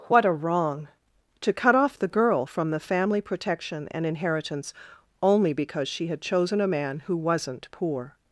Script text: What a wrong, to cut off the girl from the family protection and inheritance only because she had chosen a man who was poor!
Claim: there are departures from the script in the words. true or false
true